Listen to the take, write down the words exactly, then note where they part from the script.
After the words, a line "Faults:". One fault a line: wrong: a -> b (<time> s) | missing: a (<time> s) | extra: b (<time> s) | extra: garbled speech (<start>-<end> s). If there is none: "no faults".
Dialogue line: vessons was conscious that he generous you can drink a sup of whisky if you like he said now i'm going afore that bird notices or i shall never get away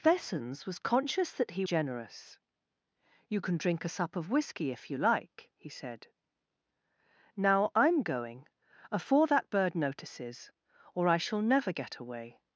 vessons was conscious that he generous you can drink a sup of whisky if you like he said now i'm going afore that bird notices or i shall never get away
Faults:
no faults